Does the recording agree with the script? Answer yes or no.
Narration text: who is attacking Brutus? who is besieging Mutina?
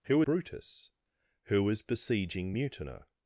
no